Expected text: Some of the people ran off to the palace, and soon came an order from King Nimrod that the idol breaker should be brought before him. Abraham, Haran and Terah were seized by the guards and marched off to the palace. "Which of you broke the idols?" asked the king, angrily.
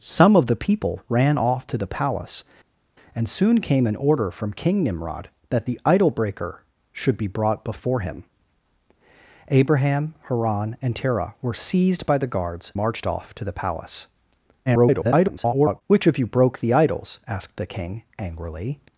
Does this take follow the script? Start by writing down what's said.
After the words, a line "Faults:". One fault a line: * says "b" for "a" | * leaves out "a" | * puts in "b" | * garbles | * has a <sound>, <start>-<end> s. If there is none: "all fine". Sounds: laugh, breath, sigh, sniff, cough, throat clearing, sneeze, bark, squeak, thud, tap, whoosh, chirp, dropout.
Some of the people ran off to the palace, and soon came an order from King Nimrod that the idol breaker should be brought before him. Abraham, Haran and Terah were seized by the guards marched off to the palace. [garbled] "Which of you broke the idols?" asked the king, angrily.
Faults:
* leaves out "and"
* garbles